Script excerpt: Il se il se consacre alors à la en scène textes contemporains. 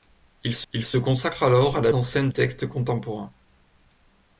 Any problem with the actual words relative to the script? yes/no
no